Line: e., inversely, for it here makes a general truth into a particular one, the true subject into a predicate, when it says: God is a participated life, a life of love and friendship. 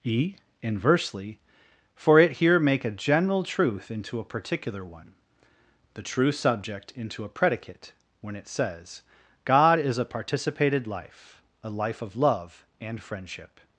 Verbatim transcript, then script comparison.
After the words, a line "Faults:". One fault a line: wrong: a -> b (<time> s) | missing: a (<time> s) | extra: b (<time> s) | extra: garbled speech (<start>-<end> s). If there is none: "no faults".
e., inversely, for it here make a general truth into a particular one, the true subject into a predicate, when it says: God is a participated life, a life of love and friendship.
Faults:
wrong: makes -> make (2.6 s)